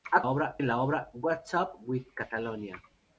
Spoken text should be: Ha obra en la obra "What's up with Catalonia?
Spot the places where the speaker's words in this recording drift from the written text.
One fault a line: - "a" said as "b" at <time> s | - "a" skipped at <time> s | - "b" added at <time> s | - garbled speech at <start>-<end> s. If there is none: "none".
none